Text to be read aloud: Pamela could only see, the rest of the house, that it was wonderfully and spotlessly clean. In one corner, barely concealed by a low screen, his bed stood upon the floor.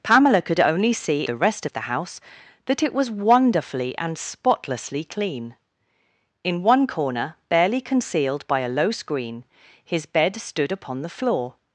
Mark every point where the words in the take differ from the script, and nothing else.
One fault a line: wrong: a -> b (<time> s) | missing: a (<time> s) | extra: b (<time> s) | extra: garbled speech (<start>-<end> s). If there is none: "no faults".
no faults